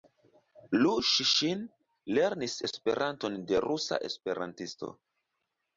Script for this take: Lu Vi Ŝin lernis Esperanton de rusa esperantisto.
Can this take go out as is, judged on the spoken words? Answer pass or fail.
fail